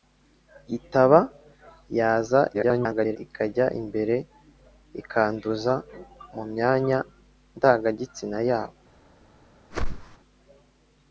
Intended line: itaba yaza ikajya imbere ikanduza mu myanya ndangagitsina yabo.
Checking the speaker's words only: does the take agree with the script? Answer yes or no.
no